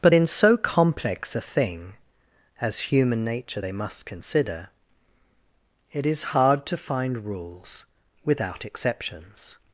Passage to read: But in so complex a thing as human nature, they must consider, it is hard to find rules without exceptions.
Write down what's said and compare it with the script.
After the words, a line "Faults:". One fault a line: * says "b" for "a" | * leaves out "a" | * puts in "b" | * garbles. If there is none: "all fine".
But in so complex a thing as human nature, they must consider, it is hard to find rules without exceptions.
Faults:
all fine